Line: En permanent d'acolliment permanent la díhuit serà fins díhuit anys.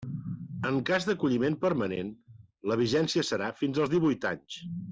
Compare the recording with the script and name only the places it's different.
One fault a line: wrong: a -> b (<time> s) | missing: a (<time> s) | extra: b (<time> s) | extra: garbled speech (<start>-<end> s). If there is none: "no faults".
wrong: permanent -> cas (0.9 s)
wrong: díhuit -> vigència (2.8 s)
extra: als (3.8 s)